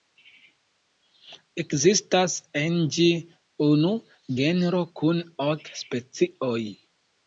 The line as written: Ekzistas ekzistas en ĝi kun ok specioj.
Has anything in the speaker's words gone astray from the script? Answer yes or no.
yes